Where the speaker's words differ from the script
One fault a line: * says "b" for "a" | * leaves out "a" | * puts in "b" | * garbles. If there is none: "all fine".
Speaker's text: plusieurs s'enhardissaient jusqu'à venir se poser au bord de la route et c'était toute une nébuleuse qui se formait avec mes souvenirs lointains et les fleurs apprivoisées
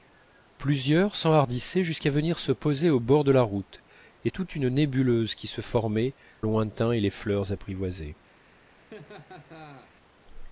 * leaves out "c'était"
* leaves out "avec mes souvenirs"